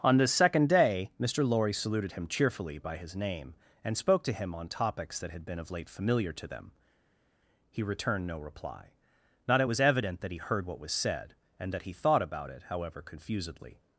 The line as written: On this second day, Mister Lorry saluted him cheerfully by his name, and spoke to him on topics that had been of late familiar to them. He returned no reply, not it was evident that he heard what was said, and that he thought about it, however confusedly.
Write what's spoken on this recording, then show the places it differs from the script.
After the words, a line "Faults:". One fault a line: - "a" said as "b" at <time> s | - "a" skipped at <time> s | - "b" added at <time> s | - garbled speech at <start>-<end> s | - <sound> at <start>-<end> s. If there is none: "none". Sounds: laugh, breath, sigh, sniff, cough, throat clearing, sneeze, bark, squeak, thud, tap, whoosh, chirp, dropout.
On this second day, Mister Lorry saluted him cheerfully by his name, and spoke to him on topics that had been of late familiar to them. He returned no reply, not it was evident that he heard what was said, and that he thought about it, however confusedly.
Faults:
none